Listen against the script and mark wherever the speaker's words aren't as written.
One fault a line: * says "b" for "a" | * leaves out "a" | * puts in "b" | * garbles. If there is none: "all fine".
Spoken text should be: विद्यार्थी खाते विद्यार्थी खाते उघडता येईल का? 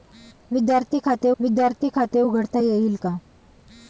all fine